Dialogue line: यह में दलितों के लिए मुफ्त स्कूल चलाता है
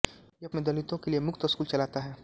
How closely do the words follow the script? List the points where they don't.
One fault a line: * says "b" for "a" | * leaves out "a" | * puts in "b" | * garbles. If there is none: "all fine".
all fine